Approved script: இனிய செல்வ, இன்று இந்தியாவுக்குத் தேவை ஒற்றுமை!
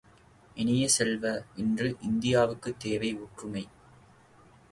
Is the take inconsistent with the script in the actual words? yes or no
no